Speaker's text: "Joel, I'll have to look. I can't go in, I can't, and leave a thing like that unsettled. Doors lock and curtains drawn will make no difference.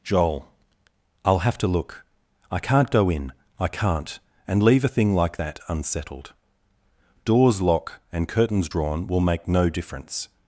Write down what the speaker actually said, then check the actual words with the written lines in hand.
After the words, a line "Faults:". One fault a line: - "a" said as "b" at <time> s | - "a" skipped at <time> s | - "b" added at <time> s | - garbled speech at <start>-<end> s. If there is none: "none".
"Joel, I'll have to look. I can't go in, I can't, and leave a thing like that unsettled. Doors lock and curtains drawn will make no difference.
Faults:
none